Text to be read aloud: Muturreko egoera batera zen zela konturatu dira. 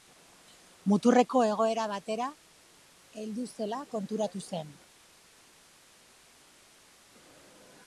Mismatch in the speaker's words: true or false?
true